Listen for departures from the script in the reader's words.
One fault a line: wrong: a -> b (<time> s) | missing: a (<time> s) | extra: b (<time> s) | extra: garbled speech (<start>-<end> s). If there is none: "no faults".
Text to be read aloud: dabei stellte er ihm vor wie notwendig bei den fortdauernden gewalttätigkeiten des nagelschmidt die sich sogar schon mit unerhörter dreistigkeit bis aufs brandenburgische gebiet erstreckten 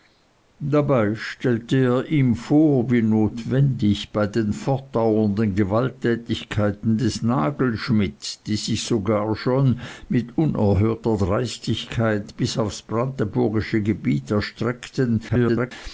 extra: garbled speech (15.3-15.7 s)